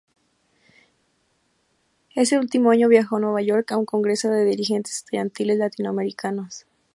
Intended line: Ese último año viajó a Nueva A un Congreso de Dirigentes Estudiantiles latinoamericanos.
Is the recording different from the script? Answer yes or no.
yes